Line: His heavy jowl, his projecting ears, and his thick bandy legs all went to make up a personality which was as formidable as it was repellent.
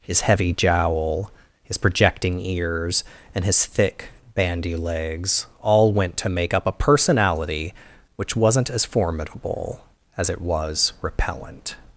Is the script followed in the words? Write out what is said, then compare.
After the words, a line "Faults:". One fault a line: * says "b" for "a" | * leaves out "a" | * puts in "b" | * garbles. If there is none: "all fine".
His heavy jowl, his projecting ears, and his thick bandy legs all went to make up a personality which wasn't as formidable as it was repellent.
Faults:
* says "wasn't" for "was"